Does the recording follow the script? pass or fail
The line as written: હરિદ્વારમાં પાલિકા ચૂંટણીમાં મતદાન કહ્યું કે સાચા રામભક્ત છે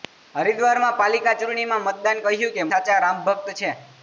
pass